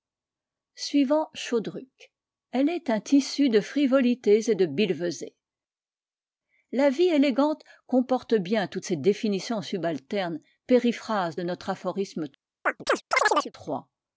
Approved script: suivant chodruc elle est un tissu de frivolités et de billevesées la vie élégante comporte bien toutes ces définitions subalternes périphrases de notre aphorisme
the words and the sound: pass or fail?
fail